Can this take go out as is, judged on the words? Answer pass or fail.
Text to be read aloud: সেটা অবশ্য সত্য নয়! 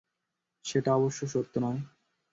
pass